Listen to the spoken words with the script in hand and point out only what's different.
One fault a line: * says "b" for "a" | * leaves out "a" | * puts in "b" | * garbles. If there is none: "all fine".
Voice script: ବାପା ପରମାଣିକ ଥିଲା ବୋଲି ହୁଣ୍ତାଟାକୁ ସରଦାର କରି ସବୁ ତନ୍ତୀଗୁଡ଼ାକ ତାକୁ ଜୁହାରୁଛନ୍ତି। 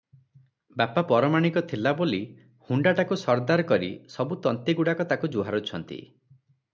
all fine